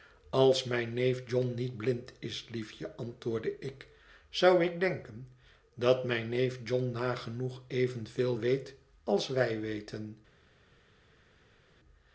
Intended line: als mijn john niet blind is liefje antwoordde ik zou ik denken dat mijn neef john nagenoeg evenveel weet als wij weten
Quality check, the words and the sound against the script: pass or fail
fail